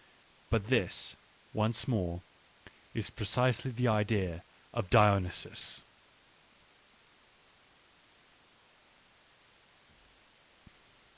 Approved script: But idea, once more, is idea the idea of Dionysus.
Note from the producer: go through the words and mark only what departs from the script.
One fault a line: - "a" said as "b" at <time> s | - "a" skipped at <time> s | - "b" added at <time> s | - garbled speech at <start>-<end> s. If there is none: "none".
- "idea" said as "this" at 0.7 s
- "idea" said as "precisely" at 3.1 s